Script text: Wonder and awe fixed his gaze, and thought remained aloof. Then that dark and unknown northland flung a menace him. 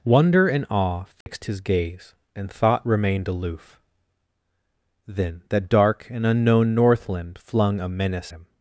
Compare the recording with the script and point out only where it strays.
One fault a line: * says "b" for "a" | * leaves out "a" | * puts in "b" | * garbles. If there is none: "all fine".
all fine